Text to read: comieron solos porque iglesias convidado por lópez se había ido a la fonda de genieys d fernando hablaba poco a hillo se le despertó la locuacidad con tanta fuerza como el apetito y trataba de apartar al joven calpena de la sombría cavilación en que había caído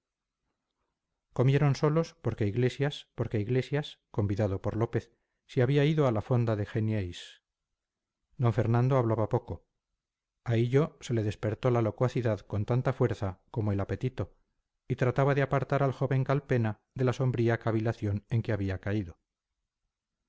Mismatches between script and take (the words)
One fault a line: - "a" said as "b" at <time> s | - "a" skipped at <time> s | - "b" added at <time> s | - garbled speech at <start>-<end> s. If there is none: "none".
- "porque iglesias" added at 3.2 s